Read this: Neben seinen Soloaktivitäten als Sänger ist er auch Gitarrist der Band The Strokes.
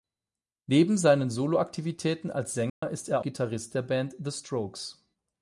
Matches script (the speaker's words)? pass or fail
fail